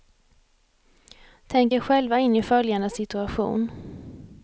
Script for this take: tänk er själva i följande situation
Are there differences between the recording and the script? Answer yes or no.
yes